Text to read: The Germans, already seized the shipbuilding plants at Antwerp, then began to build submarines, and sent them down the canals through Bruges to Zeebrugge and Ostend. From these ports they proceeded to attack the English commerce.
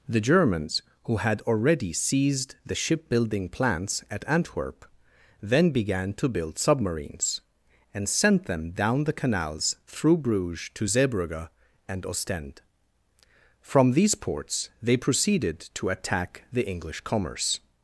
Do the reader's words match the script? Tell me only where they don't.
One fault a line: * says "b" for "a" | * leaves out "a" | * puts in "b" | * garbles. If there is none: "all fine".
* puts in "who had"